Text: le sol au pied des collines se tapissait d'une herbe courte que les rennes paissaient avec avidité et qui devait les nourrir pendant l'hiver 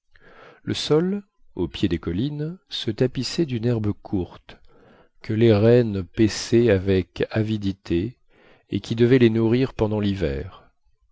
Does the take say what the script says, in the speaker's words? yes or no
yes